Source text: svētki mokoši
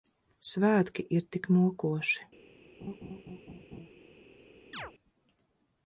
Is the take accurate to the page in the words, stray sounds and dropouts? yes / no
no